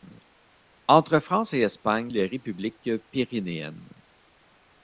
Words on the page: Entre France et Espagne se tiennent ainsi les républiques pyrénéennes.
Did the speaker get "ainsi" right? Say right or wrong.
wrong